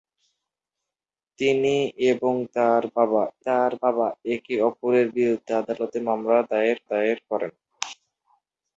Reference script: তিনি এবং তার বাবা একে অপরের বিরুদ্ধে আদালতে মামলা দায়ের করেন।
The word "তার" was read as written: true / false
true